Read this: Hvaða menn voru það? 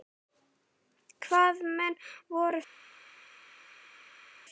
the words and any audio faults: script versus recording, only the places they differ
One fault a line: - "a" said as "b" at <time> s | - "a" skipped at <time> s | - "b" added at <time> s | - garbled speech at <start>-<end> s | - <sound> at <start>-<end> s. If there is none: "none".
none